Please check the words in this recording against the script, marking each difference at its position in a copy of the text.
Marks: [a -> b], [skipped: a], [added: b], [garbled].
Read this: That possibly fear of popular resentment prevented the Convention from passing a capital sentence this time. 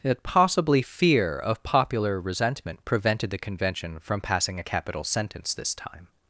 That possibly fear of popular resentment prevented the Convention from passing a capital sentence this time.